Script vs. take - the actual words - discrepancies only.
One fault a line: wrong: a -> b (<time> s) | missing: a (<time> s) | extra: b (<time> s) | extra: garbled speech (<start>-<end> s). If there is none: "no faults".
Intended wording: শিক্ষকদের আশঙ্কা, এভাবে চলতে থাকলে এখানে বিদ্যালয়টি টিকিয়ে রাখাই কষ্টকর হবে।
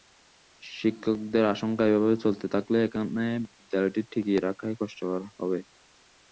no faults